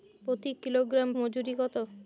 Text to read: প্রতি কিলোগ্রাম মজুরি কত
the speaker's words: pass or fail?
pass